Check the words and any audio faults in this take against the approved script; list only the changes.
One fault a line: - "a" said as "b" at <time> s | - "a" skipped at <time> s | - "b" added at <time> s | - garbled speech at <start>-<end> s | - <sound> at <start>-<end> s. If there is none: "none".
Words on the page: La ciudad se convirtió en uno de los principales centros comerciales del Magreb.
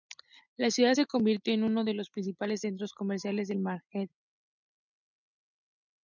none